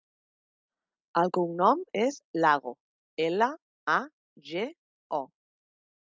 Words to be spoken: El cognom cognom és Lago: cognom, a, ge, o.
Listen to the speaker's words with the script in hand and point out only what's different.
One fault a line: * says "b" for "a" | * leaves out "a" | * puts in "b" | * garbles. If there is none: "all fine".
* leaves out "cognom"
* says "ela" for "cognom"